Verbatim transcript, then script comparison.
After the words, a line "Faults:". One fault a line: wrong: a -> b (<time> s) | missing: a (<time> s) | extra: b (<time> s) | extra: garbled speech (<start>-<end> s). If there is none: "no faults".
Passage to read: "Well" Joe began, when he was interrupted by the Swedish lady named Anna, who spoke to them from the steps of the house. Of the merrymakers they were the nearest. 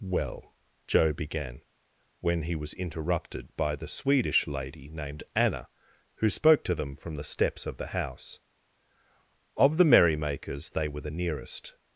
"Well" Joe began, when he was interrupted by the Swedish lady named Anna, who spoke to them from the steps of the house. Of the merrymakers they were the nearest.
Faults:
no faults